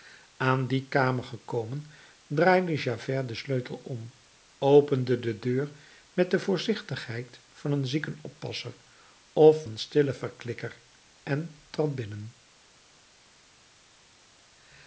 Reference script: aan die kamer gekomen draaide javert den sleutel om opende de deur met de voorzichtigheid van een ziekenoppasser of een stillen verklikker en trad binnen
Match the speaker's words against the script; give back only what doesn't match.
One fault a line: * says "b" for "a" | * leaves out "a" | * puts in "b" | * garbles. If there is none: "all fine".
all fine